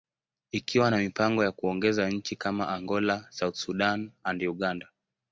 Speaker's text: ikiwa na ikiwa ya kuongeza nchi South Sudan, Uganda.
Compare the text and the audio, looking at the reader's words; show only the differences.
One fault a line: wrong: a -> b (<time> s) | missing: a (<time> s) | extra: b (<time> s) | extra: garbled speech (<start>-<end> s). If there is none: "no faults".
wrong: ikiwa -> mipango (1.0 s)
extra: kama Angola (2.4 s)
extra: and (4.2 s)